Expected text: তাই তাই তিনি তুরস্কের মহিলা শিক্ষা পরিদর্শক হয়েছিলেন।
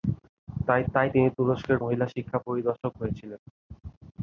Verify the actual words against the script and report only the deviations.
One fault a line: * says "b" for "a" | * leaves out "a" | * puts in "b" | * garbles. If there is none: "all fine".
all fine